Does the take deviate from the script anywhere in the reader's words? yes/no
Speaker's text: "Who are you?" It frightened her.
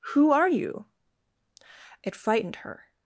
no